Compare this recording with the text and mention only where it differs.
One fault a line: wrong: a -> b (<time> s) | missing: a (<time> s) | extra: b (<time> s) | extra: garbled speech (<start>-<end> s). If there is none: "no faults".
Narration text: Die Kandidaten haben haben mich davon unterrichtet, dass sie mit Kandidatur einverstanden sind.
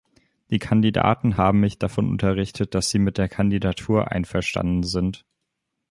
missing: haben (1.6 s)
extra: der (3.2 s)